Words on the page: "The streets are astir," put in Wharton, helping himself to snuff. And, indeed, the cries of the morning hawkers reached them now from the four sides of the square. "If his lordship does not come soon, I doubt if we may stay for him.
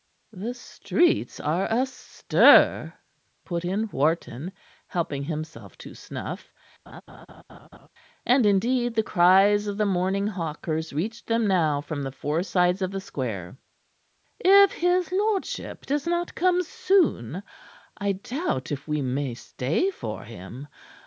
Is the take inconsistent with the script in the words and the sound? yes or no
yes